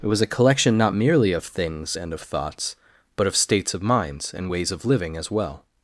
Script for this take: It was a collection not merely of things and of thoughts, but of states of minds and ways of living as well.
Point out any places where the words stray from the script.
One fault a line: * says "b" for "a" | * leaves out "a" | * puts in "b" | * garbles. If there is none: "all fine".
all fine